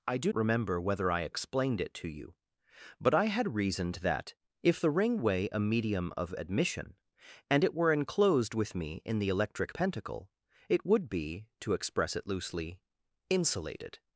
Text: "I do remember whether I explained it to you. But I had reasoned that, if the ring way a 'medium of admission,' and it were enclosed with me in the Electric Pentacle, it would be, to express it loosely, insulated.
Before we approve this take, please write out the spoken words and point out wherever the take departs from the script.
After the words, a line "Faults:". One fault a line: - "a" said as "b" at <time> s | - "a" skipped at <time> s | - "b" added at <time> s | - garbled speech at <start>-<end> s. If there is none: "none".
"I do remember whether I explained it to you. But I had reasoned that, if the ring way a 'medium of admission,' and it were enclosed with me in the Electric Pentacle, it would be, to express it loosely, insulated.
Faults:
none